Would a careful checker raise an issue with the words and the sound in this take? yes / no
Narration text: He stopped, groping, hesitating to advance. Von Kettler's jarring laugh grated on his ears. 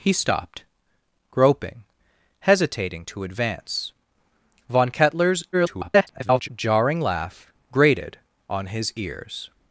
yes